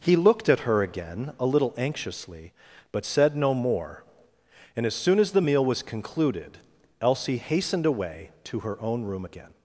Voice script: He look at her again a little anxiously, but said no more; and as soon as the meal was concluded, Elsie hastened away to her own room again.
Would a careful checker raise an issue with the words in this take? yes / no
yes